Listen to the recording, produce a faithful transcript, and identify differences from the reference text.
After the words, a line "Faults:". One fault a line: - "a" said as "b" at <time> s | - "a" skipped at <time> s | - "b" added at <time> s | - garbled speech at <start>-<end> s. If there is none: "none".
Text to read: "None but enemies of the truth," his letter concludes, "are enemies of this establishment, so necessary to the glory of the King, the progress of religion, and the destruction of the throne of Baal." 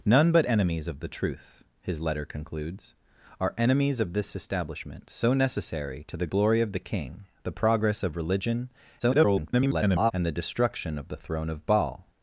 "None but enemies of the truth," his letter concludes, "are enemies of this establishment, so necessary to the glory of the King, the progress of religion, [garbled] and the destruction of the throne of Baal."
Faults:
- garbled speech at 9.0-10.1 s